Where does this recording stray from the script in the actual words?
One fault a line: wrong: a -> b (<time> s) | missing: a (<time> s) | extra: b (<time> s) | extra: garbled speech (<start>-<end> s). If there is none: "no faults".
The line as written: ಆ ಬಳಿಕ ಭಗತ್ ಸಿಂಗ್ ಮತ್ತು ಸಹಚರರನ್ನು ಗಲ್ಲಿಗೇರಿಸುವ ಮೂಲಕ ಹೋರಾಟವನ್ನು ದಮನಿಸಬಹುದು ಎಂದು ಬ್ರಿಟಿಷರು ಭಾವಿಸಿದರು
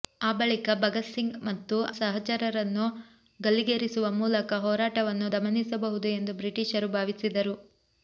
no faults